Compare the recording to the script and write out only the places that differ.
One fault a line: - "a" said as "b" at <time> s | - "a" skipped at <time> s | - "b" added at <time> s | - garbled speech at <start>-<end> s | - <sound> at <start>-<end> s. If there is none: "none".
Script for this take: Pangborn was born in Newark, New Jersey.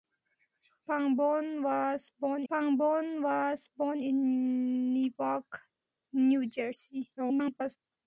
- "pangborn was born" added at 2.5 s
- garbled speech at 7.2-7.8 s